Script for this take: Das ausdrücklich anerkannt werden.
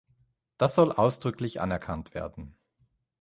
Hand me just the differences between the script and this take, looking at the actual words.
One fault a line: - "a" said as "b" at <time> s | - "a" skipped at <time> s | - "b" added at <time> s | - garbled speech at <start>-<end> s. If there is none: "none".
- "soll" added at 0.7 s